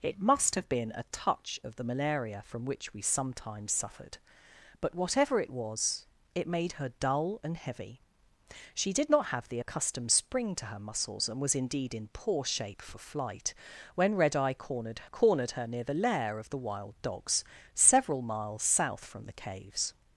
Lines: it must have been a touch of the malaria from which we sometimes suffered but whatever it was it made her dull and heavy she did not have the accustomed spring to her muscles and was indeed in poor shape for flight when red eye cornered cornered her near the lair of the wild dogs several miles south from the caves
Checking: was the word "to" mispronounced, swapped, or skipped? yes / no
no